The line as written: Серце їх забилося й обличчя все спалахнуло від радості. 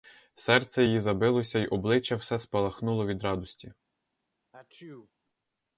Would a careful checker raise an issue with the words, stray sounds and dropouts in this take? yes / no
yes